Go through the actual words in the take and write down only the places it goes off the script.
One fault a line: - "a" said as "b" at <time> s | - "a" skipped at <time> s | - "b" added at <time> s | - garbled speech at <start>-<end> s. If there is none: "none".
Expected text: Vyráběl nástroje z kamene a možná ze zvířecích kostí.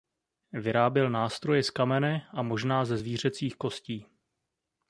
none